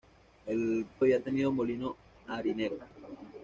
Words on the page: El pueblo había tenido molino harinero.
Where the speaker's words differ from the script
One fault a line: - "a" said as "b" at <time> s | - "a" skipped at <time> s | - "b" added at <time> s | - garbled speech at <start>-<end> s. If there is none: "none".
- "pueblo" skipped at 0.9 s